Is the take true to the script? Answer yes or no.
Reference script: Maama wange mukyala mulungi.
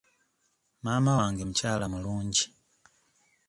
yes